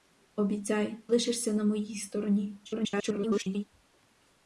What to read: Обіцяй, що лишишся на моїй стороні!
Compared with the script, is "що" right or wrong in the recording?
wrong